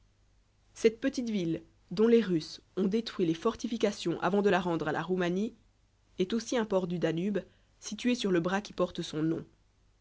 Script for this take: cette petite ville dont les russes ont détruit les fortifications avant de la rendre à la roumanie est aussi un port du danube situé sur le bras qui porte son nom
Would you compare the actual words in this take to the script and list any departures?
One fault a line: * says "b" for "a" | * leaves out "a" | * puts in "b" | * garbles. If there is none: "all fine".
all fine